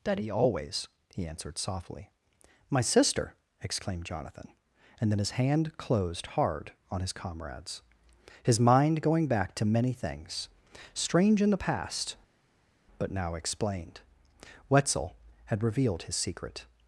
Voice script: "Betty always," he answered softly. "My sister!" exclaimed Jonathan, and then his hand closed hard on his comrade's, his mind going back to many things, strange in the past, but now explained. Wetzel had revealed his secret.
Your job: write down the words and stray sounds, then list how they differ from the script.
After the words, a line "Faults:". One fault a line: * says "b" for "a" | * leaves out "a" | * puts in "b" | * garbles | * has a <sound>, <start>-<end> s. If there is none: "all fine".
"Daddy always," he answered softly. "My sister!" exclaimed Jonathan, and then his hand closed hard on his comrade's, his mind going back to many things, strange in the past, but now explained. Wetzel had revealed his secret.
Faults:
* says "Daddy" for "Betty"